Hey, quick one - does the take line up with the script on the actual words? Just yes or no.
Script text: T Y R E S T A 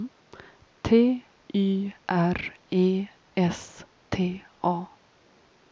yes